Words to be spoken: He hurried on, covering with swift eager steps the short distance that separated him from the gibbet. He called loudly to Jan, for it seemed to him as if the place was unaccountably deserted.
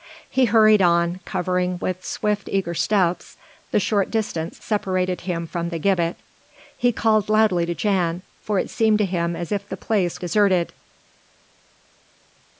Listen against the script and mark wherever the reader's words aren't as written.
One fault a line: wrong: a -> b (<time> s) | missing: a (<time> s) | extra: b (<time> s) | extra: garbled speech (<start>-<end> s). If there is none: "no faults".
missing: that (4.6 s)
missing: was unaccountably (10.2 s)